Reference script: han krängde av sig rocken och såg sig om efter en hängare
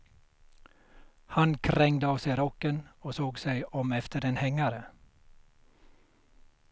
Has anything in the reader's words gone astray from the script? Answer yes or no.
no